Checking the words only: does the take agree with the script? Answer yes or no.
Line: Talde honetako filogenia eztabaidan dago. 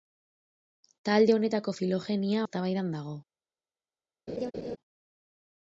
yes